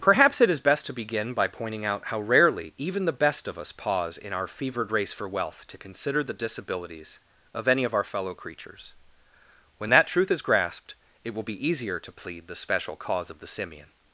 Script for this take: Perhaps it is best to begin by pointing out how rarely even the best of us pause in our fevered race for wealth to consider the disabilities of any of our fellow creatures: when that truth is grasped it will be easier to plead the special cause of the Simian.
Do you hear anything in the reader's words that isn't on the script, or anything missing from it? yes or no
no